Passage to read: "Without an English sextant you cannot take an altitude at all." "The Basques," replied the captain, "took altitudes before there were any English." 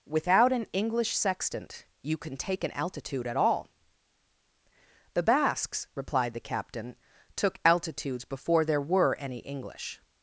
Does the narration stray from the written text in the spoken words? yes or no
yes